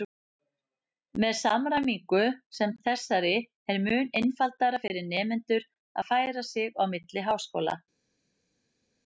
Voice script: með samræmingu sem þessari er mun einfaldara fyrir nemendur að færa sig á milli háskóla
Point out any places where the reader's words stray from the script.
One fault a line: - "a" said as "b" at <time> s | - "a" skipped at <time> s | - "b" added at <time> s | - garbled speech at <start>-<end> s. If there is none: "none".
none